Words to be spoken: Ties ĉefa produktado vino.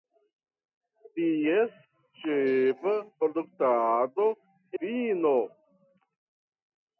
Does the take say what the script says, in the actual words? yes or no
yes